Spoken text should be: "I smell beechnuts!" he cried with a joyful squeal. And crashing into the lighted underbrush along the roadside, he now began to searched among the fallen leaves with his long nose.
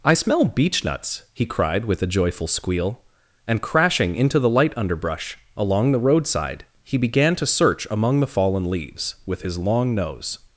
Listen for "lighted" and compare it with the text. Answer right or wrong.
wrong